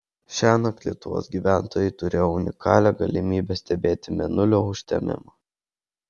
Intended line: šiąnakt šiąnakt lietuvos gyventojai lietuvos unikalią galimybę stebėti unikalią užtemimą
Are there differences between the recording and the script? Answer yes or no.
yes